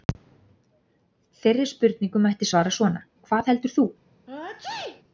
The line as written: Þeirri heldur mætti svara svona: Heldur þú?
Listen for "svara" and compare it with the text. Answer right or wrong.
right